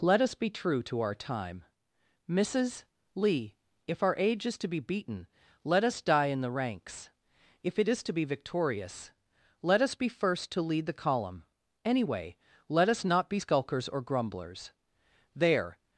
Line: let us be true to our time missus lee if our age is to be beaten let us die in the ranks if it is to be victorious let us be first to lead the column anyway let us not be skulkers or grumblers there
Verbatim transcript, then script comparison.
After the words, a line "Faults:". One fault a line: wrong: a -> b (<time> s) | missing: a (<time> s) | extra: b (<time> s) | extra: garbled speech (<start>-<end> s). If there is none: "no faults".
let us be true to our time missus lee if our age is to be beaten let us die in the ranks if it is to be victorious let us be first to lead the column anyway let us not be skulkers or grumblers there
Faults:
no faults